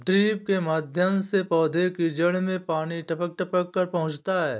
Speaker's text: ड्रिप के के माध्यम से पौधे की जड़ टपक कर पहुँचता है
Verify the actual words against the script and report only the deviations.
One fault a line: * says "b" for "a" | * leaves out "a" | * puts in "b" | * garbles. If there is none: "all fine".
* leaves out "के"
* puts in "में पानी टपक"